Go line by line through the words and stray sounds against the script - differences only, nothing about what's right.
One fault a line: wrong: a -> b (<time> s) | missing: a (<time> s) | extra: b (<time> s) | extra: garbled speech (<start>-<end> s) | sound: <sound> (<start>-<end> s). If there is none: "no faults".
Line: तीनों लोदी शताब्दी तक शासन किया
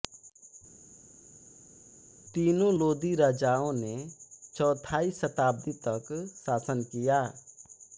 extra: राजाओं ने चौथाई (3.1 s)